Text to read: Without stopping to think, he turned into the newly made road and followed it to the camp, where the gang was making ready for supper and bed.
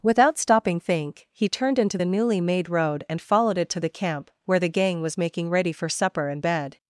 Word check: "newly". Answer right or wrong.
right